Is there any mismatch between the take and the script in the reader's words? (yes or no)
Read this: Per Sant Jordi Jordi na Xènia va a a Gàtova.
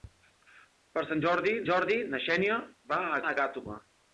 no